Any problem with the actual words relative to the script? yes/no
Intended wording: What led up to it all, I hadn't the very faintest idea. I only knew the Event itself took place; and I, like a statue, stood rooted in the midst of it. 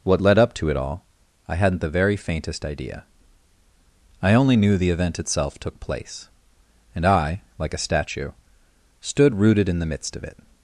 no